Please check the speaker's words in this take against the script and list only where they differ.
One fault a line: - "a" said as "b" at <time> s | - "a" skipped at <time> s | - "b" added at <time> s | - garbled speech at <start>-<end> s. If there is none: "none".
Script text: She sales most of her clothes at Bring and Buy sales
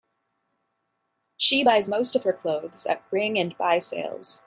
- "sales" said as "buys" at 1.6 s